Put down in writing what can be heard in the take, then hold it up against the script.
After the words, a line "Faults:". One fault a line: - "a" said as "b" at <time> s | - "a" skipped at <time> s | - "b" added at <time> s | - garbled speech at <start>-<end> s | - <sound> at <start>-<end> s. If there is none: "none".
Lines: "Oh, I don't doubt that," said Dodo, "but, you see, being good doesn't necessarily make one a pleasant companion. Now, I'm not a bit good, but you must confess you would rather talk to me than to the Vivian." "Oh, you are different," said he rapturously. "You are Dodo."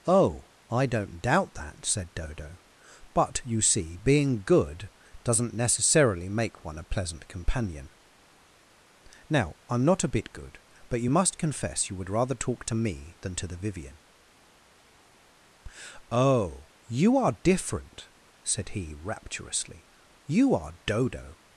"Oh, I don't doubt that," said Dodo, "but, you see, being good doesn't necessarily make one a pleasant companion. Now, I'm not a bit good, but you must confess you would rather talk to me than to the Vivian." "Oh, you are different," said he rapturously. "You are Dodo."
Faults:
none